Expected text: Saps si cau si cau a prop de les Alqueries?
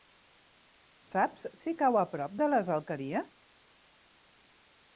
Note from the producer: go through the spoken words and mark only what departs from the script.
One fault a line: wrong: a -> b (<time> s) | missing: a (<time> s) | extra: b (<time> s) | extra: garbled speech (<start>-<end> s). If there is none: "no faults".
missing: si cau (2.0 s)